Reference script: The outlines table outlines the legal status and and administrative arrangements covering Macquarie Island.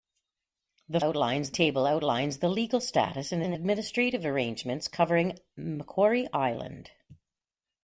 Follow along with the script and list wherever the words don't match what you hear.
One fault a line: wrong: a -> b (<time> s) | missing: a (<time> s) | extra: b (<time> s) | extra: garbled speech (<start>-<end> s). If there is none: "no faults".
no faults